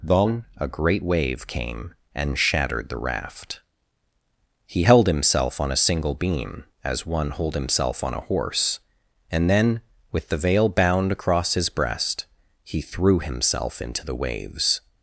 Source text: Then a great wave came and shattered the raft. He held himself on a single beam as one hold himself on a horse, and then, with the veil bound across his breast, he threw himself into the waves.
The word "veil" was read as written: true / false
true